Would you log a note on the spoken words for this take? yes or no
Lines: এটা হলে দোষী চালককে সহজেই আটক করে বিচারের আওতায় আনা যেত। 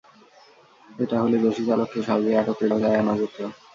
yes